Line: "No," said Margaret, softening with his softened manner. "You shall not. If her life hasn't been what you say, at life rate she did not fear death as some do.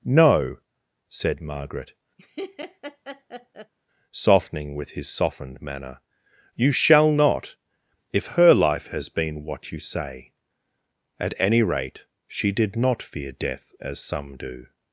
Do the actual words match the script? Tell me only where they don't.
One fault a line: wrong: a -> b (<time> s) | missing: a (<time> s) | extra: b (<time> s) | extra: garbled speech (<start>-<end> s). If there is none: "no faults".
wrong: hasn't -> has (8.9 s)
wrong: life -> any (11.4 s)